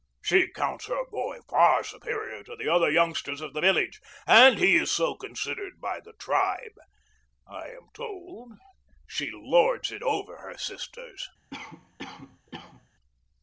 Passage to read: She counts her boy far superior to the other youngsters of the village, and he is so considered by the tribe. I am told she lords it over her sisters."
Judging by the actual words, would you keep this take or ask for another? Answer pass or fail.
pass